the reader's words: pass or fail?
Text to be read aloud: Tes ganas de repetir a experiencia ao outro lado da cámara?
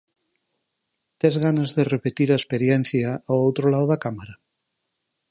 pass